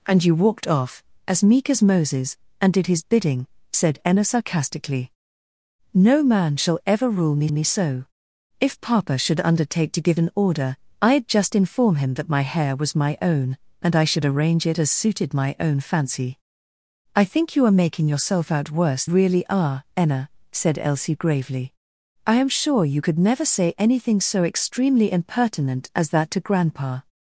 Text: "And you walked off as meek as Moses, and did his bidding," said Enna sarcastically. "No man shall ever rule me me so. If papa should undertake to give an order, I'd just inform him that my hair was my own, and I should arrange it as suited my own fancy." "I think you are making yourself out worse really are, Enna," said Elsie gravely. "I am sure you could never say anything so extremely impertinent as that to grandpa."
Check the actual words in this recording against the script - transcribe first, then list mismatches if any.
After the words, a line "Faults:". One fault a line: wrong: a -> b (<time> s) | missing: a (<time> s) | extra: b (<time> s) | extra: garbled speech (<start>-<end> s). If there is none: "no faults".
"And you walked off as meek as Moses, and did his bidding," said Enna sarcastically. "No man shall ever rule me me so. If papa should undertake to give an order, I'd just inform him that my hair was my own, and I should arrange it as suited my own fancy." "I think you are making yourself out worse really are, Enna," said Elsie gravely. "I am sure you could never say anything so extremely impertinent as that to grandpa."
Faults:
no faults